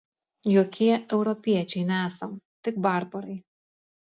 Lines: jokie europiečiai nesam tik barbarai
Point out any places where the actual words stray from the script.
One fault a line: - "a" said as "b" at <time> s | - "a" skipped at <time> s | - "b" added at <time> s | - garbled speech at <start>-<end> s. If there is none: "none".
none